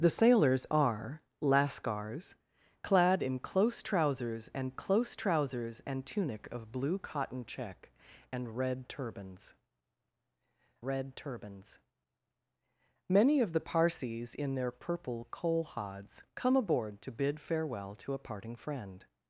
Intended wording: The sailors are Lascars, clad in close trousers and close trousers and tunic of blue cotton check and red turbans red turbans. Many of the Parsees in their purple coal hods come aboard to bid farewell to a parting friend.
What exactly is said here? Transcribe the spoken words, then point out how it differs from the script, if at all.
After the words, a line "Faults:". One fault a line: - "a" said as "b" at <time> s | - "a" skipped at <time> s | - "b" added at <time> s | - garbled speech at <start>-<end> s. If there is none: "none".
The sailors are Lascars, clad in close trousers and close trousers and tunic of blue cotton check and red turbans red turbans. Many of the Parsees in their purple coal hods come aboard to bid farewell to a parting friend.
Faults:
none